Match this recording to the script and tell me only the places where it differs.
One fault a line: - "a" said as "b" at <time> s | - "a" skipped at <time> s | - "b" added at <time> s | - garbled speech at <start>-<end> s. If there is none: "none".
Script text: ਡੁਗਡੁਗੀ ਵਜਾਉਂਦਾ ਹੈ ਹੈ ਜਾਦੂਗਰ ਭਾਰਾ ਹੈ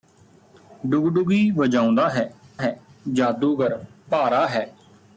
none